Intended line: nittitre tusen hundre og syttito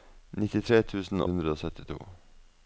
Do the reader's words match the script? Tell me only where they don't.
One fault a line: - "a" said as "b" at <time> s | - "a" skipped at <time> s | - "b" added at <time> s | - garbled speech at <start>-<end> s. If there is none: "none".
none